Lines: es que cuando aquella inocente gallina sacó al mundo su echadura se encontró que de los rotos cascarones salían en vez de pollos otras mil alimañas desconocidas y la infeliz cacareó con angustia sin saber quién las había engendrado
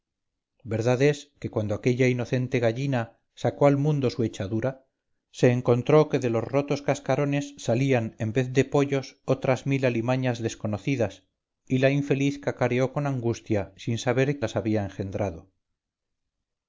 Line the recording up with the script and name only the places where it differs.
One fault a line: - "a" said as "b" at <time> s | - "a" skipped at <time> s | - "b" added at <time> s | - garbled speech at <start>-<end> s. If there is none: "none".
- "quién" skipped at 14.4 s